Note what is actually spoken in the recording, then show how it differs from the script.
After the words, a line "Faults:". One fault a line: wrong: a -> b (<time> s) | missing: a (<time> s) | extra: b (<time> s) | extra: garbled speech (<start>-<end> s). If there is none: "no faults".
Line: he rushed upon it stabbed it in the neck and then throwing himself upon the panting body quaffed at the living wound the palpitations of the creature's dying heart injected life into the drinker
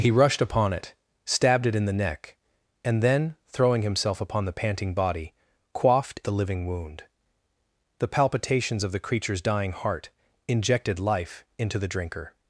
he rushed upon it stabbed it in the neck and then throwing himself upon the panting body quaffed the living wound the palpitations of the creature's dying heart injected life into the drinker
Faults:
missing: at (6.2 s)